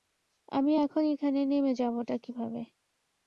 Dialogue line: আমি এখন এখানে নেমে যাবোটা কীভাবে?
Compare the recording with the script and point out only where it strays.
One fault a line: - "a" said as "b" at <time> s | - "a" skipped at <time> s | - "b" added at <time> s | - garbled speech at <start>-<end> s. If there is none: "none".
none